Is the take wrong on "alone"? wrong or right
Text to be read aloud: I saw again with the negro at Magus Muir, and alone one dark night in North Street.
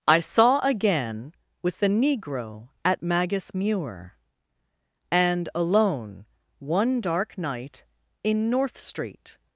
right